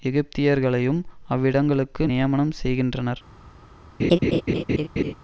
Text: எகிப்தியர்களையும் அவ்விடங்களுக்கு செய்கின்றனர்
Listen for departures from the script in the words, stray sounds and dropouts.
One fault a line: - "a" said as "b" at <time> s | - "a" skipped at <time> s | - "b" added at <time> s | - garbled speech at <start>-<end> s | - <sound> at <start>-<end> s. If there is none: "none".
- "நியமனம்" added at 2.0 s
- laugh at 4.0-5.1 s